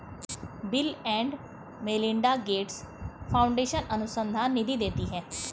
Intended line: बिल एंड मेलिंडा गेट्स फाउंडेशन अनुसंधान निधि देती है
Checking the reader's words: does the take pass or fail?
pass